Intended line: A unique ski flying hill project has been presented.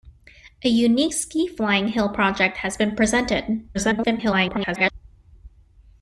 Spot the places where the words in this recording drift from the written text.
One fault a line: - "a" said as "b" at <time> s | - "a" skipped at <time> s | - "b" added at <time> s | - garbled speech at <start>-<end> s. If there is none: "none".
- garbled speech at 3.7-4.9 s